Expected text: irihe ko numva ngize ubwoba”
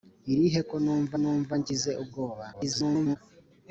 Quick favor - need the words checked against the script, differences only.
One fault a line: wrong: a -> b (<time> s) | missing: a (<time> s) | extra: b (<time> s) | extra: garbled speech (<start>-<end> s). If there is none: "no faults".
extra: numva (1.2 s)
extra: garbled speech (2.5-3.2 s)